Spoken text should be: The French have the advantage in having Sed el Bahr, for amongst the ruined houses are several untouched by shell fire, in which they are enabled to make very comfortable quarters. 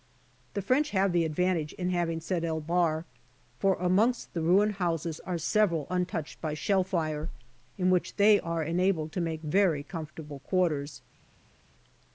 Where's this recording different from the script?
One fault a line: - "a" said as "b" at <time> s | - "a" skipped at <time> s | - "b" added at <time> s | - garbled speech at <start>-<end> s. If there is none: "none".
none